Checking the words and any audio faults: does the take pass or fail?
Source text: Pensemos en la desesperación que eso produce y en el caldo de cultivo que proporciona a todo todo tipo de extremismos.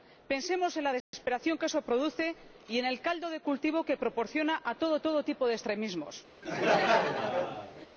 fail